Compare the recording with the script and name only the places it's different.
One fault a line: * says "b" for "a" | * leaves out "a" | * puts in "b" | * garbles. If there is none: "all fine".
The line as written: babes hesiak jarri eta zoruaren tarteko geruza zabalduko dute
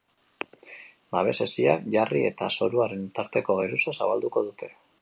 all fine